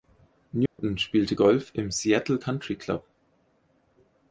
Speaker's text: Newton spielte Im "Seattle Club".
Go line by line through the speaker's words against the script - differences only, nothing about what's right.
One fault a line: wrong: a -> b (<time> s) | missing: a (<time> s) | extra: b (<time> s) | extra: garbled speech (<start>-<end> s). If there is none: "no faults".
extra: Golf (1.3 s)
extra: Country (2.4 s)